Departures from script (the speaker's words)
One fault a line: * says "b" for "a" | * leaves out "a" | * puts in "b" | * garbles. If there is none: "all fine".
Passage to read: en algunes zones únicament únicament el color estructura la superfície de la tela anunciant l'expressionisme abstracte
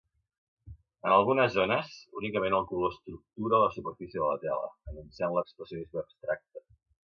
* leaves out "únicament"